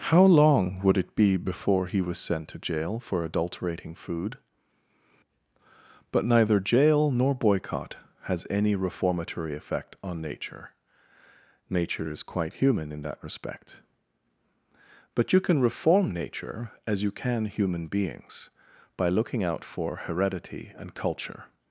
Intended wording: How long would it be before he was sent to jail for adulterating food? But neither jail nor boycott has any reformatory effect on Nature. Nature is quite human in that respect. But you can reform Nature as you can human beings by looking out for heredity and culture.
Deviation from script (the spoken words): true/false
false